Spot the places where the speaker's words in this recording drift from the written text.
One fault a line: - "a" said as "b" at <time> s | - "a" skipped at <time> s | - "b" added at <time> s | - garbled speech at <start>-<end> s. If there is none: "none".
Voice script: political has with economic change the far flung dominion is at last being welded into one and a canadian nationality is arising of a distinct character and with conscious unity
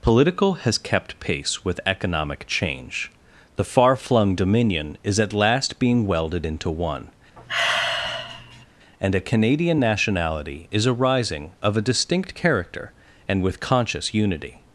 - "kept pace" added at 0.8 s